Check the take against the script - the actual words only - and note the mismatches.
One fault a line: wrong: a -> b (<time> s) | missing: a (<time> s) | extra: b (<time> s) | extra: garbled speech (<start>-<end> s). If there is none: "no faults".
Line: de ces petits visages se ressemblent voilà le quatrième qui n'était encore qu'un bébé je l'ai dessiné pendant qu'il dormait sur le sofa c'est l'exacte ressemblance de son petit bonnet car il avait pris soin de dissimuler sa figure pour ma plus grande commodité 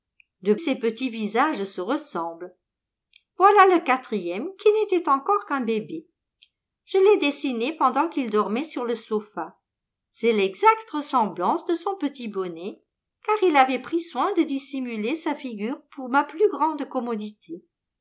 no faults